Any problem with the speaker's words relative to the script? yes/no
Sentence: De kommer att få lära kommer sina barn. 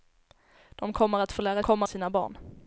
no